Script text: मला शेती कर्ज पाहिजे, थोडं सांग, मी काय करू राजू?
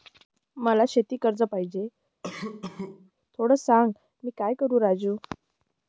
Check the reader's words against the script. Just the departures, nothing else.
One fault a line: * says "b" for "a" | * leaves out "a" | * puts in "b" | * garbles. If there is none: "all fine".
all fine